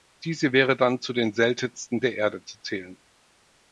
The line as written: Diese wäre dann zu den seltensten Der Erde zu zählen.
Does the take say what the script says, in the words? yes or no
yes